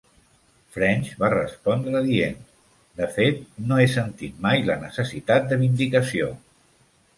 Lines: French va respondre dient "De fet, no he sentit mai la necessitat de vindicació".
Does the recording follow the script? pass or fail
pass